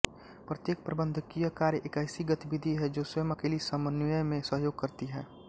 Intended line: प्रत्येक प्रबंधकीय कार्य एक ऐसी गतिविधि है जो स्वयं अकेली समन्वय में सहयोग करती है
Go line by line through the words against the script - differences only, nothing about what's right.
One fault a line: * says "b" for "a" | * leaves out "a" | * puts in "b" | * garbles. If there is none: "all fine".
all fine